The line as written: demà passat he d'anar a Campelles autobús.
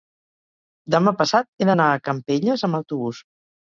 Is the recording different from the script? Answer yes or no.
yes